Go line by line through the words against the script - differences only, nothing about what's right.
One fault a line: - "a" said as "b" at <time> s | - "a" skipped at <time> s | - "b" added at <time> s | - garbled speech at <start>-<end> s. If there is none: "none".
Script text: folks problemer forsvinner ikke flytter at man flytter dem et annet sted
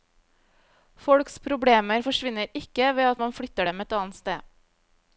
- "flytter" said as "ved" at 3.0 s